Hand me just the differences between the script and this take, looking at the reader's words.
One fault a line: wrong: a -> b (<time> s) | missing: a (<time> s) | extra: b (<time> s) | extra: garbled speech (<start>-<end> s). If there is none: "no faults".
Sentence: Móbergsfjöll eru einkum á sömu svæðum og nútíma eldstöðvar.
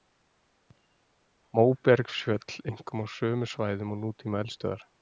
missing: eru (2.6 s)